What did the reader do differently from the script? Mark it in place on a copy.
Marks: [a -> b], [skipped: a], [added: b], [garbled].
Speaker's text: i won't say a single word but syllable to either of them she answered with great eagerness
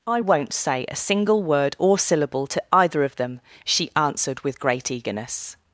i won't say a single word [but -> or] syllable to either of them she answered with great eagerness